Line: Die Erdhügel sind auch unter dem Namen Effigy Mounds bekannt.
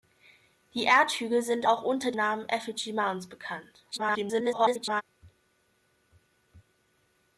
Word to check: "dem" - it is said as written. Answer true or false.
false